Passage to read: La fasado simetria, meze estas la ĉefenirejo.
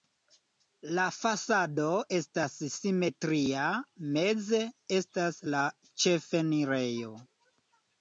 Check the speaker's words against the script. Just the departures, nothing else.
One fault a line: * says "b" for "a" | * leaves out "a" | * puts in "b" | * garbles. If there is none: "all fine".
* puts in "estas"